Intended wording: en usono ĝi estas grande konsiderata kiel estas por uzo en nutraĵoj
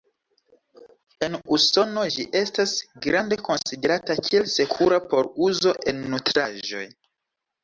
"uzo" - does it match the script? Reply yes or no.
yes